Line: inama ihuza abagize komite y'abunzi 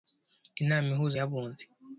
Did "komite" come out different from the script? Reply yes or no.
yes